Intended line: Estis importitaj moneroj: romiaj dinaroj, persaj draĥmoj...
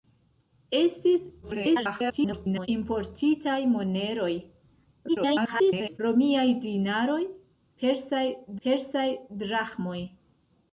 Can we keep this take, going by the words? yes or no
no